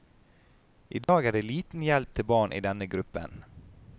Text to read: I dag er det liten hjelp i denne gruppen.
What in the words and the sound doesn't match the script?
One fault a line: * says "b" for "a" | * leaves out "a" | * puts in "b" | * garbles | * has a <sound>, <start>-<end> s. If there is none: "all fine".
* has a dropout, 1.0-1.1 s
* puts in "til barn"